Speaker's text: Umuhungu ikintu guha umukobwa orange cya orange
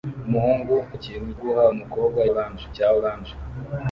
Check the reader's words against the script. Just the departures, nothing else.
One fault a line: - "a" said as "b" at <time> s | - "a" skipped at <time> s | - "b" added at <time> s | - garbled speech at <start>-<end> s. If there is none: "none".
none